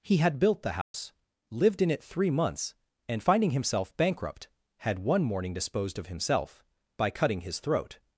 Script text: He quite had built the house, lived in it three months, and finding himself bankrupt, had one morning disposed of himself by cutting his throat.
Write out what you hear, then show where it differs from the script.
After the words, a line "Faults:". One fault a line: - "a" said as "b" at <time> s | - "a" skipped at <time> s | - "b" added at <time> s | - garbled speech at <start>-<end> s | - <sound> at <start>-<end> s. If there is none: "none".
He had built the house, lived in it three months, and finding himself bankrupt, had one morning disposed of himself by cutting his throat.
Faults:
- "quite" skipped at 0.2 s
- dropout at 0.8-0.9 s